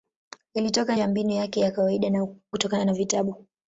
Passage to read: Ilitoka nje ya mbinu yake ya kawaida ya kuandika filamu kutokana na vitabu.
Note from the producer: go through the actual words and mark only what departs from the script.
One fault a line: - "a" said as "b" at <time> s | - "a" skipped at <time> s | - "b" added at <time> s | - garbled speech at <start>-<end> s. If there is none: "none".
- "nje" skipped at 1.0 s
- "ya kuandika filamu" skipped at 2.3 s